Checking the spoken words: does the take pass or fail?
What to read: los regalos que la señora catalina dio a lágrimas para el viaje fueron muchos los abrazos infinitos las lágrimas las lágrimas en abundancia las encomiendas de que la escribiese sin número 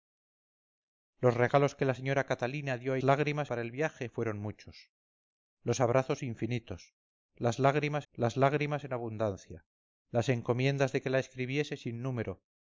pass